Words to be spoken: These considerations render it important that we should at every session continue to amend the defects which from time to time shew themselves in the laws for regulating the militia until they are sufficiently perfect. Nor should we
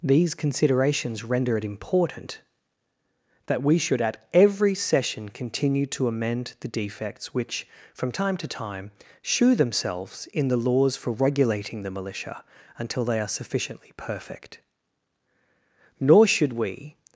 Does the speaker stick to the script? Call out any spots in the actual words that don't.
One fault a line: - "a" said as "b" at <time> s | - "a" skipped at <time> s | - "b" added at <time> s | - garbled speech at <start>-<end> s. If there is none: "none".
none